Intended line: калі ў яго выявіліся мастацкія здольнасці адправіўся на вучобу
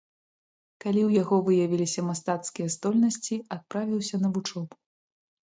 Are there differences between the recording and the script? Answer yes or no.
no